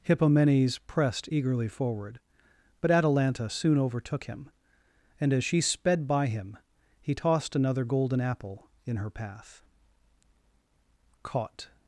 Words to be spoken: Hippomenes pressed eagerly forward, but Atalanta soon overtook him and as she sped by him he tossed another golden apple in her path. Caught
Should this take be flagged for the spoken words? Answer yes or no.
no